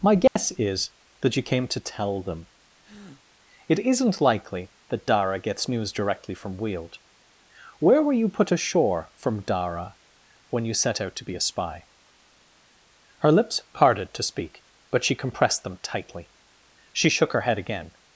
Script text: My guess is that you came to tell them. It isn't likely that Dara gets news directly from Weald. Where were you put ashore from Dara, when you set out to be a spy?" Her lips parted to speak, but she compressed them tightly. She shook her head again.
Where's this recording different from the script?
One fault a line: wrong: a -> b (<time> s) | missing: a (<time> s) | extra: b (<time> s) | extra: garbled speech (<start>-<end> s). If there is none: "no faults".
no faults